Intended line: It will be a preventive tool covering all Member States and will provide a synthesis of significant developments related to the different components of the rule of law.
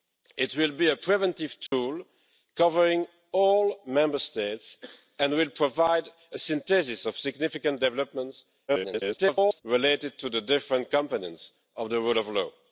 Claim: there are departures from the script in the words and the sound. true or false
true